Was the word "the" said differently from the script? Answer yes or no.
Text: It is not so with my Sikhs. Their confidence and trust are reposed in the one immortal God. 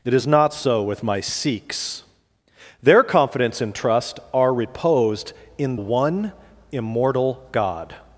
yes